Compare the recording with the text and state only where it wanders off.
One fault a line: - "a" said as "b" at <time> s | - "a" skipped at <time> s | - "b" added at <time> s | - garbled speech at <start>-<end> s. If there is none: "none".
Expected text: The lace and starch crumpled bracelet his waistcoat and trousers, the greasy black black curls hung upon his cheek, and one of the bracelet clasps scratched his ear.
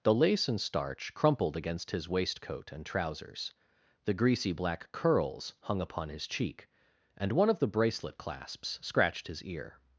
- "bracelet" said as "against" at 1.6 s
- "black" skipped at 4.9 s